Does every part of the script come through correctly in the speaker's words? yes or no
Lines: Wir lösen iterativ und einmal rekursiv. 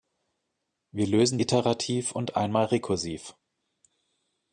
yes